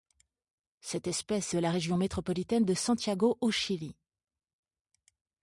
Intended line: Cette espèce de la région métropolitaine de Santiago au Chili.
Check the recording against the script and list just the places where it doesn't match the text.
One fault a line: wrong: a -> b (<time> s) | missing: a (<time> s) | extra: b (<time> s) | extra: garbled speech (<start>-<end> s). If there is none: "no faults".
no faults